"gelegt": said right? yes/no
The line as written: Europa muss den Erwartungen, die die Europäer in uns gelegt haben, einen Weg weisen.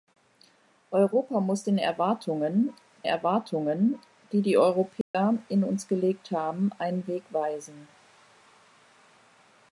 yes